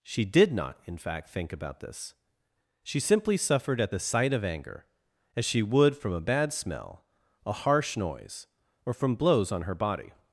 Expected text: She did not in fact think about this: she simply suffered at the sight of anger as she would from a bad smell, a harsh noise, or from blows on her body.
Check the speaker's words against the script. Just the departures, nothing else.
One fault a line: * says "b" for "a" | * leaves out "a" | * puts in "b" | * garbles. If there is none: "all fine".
all fine